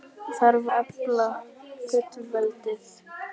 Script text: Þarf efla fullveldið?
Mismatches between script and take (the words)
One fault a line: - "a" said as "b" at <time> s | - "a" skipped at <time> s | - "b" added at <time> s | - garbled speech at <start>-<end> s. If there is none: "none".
none